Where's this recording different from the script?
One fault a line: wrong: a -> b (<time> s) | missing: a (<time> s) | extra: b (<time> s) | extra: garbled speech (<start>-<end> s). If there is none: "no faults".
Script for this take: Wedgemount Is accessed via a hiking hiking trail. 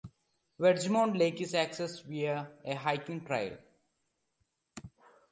extra: Lake (1.1 s)
missing: hiking (3.2 s)